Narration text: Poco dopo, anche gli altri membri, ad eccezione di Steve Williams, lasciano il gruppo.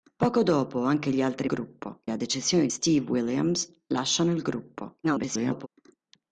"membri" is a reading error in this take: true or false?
true